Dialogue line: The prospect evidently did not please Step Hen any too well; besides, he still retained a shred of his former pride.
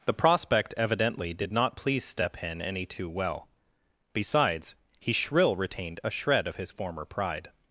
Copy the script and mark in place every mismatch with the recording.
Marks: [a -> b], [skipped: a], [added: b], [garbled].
The prospect evidently did not please Step Hen any too well; besides, he [still -> shrill] retained a shred of his former pride.